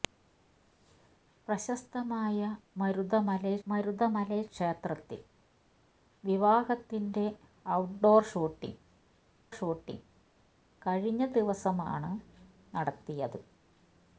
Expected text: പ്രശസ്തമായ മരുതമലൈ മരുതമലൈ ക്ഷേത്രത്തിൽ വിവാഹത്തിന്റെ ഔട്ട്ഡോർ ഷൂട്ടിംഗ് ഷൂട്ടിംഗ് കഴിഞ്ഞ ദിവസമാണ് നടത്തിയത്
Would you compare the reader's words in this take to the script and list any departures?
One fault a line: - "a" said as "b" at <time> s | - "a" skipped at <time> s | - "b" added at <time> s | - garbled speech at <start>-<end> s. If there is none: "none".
none